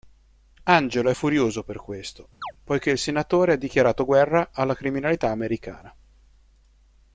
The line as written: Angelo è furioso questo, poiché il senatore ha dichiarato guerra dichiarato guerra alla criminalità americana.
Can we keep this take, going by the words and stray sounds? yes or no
no